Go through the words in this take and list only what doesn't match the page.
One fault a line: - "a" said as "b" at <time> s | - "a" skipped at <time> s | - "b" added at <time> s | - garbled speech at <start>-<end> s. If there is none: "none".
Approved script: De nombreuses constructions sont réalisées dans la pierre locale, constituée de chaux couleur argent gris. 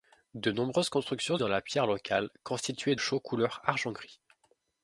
- "sont réalisées" skipped at 1.4 s
- "de" skipped at 3.0 s